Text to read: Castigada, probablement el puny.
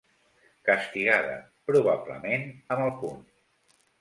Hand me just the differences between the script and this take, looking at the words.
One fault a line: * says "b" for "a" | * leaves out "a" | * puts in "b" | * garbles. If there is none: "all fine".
* puts in "amb"